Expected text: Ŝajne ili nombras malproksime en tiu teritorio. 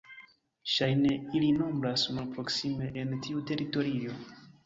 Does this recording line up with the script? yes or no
yes